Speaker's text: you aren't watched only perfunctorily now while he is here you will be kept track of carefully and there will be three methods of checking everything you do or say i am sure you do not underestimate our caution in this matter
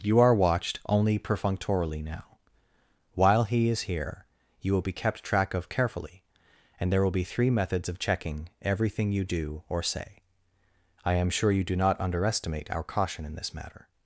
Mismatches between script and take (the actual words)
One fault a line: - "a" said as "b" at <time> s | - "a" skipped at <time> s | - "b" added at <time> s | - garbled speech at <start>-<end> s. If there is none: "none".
- "aren't" said as "are" at 0.2 s